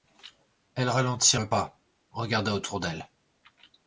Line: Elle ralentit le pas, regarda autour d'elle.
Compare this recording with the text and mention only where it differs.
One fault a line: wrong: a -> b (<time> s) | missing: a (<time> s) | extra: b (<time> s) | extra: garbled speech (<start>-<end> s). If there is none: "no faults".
no faults